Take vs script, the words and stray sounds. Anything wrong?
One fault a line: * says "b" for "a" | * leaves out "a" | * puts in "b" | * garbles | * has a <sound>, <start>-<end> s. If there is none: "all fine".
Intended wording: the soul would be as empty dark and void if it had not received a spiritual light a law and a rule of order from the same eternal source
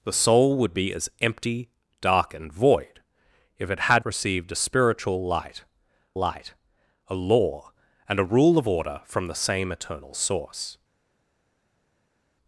* leaves out "not"
* puts in "light"